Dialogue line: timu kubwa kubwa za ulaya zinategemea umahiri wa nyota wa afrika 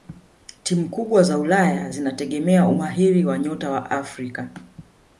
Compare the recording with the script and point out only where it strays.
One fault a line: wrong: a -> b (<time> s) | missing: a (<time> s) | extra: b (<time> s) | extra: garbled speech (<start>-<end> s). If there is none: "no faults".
missing: kubwa (1.2 s)